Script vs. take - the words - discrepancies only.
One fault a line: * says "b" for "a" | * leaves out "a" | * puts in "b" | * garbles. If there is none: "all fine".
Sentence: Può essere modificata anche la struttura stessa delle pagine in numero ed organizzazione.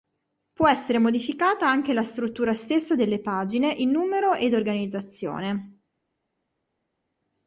all fine